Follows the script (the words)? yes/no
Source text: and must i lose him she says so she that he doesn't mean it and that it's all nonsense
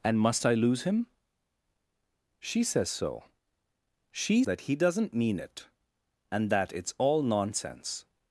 yes